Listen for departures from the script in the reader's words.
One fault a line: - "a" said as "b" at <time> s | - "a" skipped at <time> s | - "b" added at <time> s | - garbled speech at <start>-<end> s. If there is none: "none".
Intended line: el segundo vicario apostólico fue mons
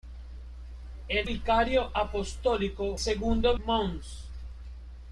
- "segundo" skipped at 1.3 s
- "fue" said as "segundo" at 3.0 s